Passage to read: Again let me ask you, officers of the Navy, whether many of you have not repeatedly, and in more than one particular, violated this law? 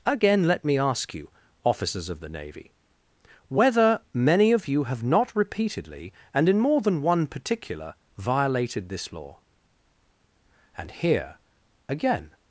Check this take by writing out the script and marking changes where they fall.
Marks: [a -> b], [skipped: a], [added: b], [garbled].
Again let me ask you, officers of the Navy, whether many of you have not repeatedly, and in more than one particular, violated this law? [added: And here again]